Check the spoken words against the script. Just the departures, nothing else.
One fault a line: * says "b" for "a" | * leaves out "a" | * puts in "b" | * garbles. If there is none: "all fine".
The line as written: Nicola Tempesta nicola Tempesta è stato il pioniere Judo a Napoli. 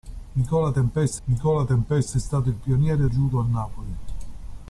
all fine